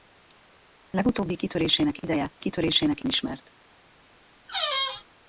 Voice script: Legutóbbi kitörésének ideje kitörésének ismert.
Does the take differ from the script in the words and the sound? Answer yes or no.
yes